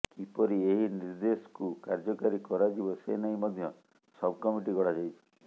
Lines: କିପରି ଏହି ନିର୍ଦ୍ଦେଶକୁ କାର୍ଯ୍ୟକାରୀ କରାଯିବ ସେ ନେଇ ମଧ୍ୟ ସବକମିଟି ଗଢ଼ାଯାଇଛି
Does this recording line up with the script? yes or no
yes